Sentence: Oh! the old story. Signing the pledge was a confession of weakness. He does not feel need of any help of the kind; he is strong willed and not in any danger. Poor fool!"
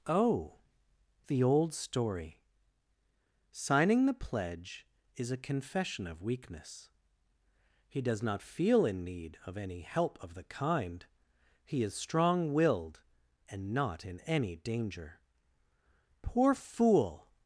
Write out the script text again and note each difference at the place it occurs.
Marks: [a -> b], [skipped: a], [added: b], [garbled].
Oh! the old story. Signing the pledge [was -> is] a confession of weakness. He does not feel [added: in] need of any help of the kind; he is strong willed and not in any danger. Poor fool!"